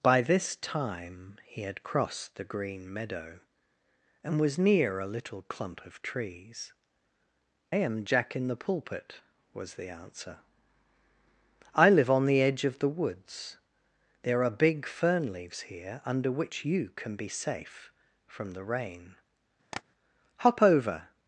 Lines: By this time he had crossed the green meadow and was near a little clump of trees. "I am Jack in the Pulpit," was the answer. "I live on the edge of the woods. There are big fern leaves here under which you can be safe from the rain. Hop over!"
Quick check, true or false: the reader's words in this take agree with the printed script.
false